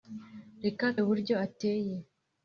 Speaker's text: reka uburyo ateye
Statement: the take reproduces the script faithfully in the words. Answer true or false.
true